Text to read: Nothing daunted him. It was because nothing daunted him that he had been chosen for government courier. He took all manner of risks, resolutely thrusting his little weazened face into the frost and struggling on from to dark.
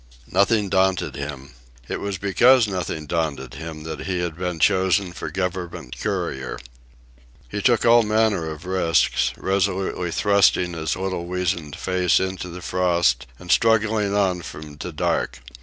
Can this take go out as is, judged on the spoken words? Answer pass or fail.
pass